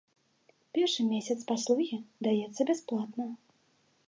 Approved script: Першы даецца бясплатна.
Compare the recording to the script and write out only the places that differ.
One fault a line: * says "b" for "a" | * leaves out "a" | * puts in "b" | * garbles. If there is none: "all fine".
* puts in "месяц паслугі"